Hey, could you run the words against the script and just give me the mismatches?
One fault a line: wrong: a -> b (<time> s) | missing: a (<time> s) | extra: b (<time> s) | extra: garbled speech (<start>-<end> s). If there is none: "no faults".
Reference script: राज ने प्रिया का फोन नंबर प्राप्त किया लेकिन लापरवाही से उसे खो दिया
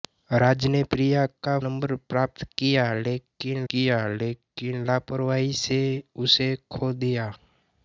missing: फोन (1.6 s)
extra: किया लेकिन (3.7 s)